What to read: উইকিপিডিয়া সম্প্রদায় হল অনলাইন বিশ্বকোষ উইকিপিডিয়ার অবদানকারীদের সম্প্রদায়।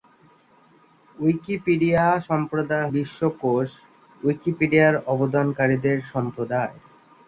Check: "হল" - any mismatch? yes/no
yes